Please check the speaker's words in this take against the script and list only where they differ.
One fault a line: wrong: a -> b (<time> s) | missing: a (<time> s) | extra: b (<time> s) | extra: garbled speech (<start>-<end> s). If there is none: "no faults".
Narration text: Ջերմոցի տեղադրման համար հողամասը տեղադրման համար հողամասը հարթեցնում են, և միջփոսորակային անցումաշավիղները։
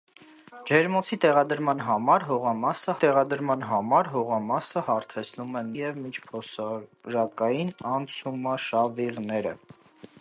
no faults